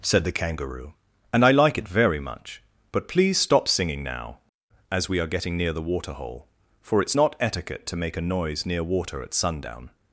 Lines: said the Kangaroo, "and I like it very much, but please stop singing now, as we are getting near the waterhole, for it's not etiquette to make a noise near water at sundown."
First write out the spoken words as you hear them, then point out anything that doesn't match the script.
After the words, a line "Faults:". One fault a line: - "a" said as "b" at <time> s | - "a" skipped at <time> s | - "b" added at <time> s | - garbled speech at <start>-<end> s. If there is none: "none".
said the Kangaroo, "and I like it very much, but please stop singing now, as we are getting near the waterhole, for it's not etiquette to make a noise near water at sundown."
Faults:
none